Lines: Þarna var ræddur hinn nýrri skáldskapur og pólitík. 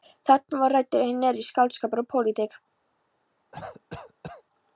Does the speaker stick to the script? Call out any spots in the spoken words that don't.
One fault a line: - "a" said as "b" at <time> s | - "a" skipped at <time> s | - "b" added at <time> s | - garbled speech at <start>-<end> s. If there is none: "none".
none